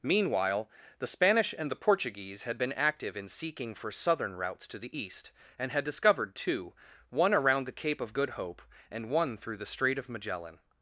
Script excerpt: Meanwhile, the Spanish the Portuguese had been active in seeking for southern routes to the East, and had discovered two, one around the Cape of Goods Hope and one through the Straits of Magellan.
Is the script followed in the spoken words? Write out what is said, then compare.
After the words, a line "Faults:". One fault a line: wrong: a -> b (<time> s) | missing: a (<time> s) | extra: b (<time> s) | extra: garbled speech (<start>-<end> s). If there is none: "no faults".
Meanwhile, the Spanish and the Portuguese had been active in seeking for southern routes to the East, and had discovered two, one around the Cape of Good Hope and one through the Strait of Magellan.
Faults:
extra: and (1.6 s)
wrong: Goods -> Good (8.1 s)
wrong: Straits -> Strait (9.7 s)